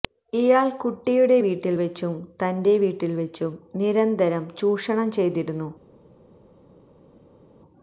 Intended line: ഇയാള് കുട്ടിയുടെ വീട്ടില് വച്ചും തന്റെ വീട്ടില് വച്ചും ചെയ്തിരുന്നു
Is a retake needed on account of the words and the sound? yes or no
yes